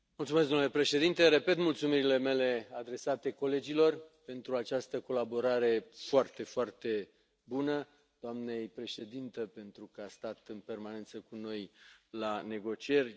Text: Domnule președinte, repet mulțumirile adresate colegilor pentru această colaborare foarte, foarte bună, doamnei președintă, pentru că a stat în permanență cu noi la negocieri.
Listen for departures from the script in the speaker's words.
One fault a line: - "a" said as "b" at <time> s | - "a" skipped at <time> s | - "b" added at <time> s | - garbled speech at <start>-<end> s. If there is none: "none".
- "mele" added at 2.2 s